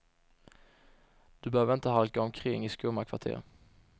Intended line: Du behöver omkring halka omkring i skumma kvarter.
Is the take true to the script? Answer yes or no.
no